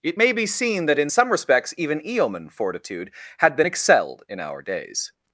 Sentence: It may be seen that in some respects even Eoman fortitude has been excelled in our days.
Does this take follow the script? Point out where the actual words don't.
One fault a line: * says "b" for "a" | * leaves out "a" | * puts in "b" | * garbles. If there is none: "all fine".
* says "had" for "has"